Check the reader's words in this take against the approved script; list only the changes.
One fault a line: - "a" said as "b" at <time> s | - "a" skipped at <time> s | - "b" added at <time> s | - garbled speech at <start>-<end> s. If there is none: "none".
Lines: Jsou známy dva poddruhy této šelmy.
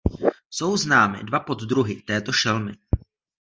none